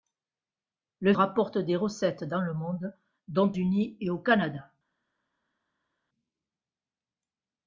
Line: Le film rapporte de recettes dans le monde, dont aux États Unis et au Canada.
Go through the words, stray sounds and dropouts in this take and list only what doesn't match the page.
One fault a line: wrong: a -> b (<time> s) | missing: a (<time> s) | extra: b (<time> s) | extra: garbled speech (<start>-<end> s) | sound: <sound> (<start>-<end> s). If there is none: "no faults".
missing: film (1.1 s)
missing: aux États (3.5 s)